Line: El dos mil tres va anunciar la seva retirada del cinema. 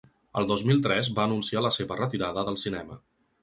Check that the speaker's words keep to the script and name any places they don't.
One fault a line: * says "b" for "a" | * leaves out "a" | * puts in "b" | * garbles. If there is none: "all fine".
all fine